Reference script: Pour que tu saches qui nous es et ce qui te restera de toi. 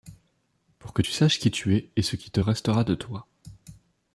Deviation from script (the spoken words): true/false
true